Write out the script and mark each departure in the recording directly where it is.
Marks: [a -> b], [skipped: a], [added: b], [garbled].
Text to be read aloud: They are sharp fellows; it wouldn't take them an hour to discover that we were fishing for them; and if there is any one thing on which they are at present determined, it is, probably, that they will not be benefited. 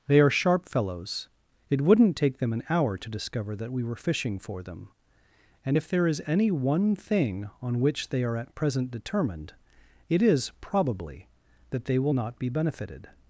They are sharp fellows; it wouldn't take them an hour to discover that we were fishing for them; and if there is any one thing on which they are at present determined, it is, probably, that they will not be benefited.